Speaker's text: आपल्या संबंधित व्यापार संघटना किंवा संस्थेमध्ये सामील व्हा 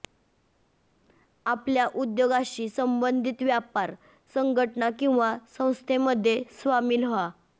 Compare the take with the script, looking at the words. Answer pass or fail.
fail